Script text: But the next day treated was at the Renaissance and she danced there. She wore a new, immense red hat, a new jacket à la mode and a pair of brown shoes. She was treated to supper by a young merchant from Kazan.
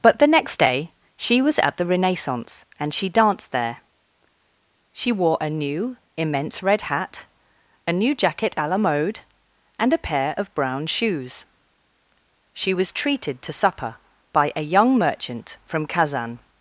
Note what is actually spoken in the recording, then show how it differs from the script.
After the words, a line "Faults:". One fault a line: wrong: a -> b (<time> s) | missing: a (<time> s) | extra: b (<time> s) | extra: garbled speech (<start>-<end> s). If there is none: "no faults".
But the next day she was at the Renaissance and she danced there. She wore a new, immense red hat, a new jacket à la mode and a pair of brown shoes. She was treated to supper by a young merchant from Kazan.
Faults:
wrong: treated -> she (1.1 s)